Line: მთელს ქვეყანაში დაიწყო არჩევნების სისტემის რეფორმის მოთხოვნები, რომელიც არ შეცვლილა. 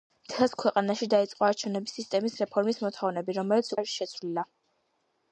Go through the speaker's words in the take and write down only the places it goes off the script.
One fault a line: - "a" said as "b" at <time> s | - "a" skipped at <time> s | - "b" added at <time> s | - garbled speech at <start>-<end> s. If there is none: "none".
none